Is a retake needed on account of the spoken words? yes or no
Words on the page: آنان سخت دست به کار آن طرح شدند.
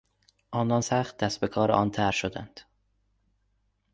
no